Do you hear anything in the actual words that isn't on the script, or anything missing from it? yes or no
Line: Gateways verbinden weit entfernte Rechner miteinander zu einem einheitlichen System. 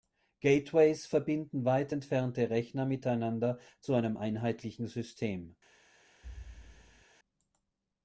no